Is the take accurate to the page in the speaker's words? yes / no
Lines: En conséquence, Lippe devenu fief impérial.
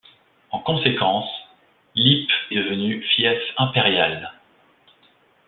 yes